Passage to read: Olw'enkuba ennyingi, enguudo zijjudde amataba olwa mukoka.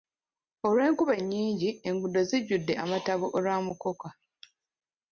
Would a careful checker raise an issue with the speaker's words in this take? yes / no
no